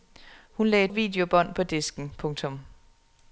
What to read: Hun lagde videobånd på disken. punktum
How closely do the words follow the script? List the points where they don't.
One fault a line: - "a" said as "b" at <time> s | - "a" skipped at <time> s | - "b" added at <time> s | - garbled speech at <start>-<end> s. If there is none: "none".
none